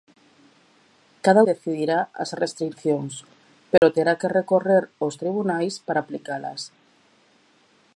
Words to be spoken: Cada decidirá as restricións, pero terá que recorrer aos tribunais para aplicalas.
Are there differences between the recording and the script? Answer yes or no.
no